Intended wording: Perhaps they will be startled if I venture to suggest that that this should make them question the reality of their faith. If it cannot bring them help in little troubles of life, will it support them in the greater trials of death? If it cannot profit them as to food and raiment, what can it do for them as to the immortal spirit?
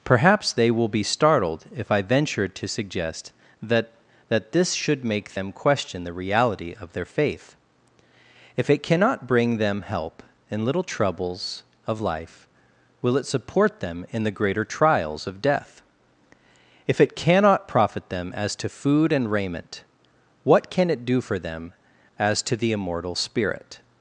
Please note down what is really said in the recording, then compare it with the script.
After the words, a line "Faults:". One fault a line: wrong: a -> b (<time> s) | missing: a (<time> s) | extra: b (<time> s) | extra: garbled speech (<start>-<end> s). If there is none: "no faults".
Perhaps they will be startled if I venture to suggest that that this should make them question the reality of their faith. If it cannot bring them help in little troubles of life, will it support them in the greater trials of death? If it cannot profit them as to food and raiment, what can it do for them as to the immortal spirit?
Faults:
no faults